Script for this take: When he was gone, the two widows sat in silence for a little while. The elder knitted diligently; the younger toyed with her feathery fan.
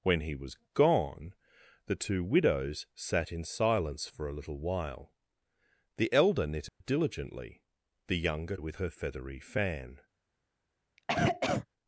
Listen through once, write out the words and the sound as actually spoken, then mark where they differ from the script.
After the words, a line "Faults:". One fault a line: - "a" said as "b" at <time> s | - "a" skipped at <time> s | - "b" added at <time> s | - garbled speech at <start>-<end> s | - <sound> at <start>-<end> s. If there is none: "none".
When he was gone, the two widows sat in silence for a little while. The elder knitted diligently; the younger with her feathery fan.
Faults:
- dropout at 6.7-6.8 s
- "toyed" skipped at 8.6 s
- cough at 11.0-11.7 s